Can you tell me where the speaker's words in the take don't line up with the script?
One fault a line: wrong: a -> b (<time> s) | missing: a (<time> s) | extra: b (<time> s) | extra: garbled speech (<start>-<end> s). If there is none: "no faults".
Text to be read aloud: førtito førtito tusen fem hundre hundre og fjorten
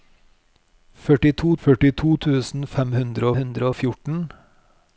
no faults